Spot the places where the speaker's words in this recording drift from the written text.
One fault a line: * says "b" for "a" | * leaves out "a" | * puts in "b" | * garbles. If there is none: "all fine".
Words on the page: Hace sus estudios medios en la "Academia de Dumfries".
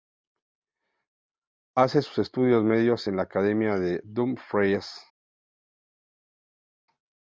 all fine